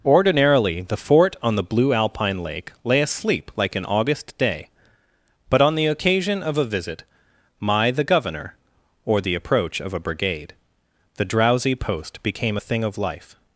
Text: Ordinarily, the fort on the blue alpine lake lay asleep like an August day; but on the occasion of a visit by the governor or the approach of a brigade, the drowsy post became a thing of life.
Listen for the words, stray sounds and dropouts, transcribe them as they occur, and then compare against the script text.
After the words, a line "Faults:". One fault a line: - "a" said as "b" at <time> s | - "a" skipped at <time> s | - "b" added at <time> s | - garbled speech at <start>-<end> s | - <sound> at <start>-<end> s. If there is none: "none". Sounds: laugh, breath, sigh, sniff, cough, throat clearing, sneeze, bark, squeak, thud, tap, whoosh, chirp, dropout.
Ordinarily, the fort on the blue alpine lake lay asleep like an August day; but on the occasion of a visit my the governor or the approach of a brigade, the drowsy post became a thing of life.
Faults:
- "by" said as "my" at 7.6 s